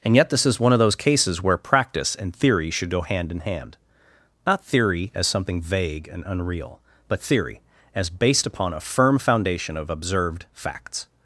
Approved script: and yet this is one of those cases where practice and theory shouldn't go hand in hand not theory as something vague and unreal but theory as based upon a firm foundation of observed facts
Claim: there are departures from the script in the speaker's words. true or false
true